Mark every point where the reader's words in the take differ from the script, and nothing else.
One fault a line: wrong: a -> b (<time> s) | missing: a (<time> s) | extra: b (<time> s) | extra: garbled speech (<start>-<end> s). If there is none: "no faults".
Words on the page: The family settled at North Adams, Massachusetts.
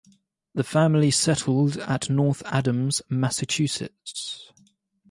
no faults